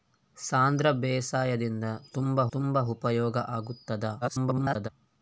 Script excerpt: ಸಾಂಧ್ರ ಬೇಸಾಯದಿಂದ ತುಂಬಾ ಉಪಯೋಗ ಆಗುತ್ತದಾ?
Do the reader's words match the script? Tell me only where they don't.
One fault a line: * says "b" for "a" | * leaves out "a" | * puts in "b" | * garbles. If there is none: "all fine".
* puts in "ತುಂಬಾ"
* garbles